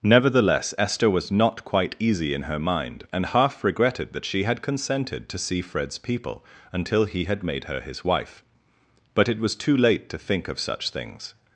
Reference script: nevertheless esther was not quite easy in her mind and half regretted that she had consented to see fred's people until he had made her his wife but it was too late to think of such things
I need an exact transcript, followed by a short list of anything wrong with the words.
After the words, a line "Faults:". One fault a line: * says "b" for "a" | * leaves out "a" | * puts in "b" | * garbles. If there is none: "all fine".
nevertheless esther was not quite easy in her mind and half regretted that she had consented to see fred's people until he had made her his wife but it was too late to think of such things
Faults:
all fine